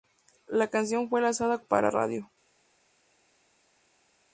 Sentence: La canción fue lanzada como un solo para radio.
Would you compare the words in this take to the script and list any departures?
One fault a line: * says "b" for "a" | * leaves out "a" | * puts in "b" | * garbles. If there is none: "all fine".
* leaves out "como un solo"